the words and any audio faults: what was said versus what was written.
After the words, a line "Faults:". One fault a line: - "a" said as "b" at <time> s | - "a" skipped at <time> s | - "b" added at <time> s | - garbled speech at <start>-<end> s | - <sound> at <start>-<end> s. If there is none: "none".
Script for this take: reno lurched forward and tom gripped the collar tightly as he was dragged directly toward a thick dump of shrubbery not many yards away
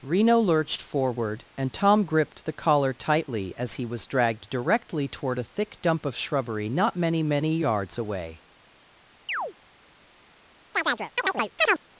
reno lurched forward and tom gripped the collar tightly as he was dragged directly toward a thick dump of shrubbery not many many yards away
Faults:
- "many" added at 7.2 s
- chirp at 9.3-9.5 s
- chirp at 10.7-11.8 s